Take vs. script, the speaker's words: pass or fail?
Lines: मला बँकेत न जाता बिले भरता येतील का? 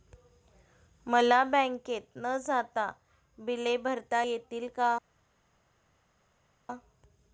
pass